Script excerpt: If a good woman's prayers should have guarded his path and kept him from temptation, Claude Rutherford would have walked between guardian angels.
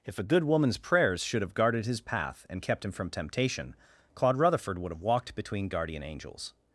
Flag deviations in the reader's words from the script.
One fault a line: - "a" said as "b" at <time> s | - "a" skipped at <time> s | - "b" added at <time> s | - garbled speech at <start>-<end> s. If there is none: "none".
none